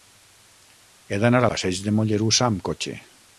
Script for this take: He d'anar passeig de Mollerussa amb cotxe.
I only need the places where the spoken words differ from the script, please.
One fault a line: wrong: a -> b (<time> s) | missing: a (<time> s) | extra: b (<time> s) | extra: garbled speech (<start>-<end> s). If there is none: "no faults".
no faults